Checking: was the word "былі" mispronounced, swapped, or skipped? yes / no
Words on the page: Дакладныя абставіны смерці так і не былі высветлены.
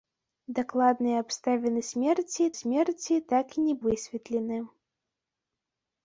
yes